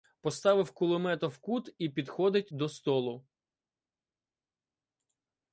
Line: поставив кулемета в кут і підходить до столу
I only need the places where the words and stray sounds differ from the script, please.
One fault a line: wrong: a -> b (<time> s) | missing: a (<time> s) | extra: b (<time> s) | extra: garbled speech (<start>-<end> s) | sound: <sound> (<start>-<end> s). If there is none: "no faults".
no faults